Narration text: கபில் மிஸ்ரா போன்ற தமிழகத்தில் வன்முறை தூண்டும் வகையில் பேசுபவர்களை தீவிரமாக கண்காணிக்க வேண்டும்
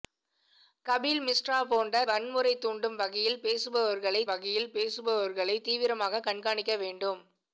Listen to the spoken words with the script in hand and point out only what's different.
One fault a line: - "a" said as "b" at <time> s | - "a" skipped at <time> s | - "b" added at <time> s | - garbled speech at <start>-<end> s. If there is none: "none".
- "தமிழகத்தில்" skipped at 2.0 s
- "வகையில் பேசுபவர்களை" added at 4.3 s